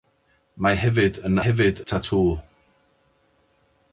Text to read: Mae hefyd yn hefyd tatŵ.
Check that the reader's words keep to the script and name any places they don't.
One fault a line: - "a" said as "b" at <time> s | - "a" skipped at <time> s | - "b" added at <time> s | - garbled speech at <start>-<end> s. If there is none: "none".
none